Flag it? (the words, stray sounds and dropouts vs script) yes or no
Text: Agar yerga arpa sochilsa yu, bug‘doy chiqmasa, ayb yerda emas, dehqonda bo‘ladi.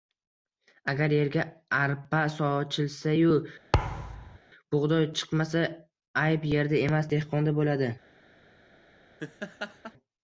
yes